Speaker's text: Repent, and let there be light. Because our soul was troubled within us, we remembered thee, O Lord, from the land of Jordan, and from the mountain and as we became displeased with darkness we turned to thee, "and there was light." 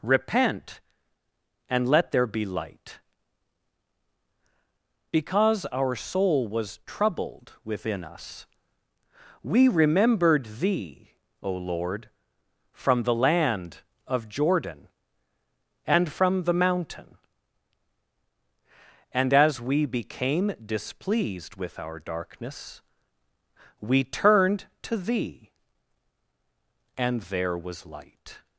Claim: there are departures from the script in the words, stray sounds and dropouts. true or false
true